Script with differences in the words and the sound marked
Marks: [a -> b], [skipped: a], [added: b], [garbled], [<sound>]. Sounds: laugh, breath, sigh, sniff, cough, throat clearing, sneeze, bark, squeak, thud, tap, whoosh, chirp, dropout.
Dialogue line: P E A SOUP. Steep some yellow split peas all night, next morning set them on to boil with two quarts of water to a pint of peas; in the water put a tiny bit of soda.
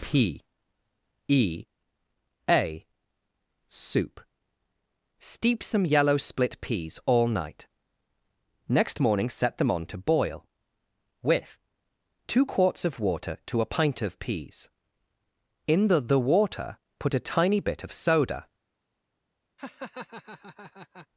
P E A SOUP. Steep some yellow split peas all night, next morning set them on to boil with two quarts of water to a pint of peas; in the [added: the] water put a tiny bit of soda. [laugh]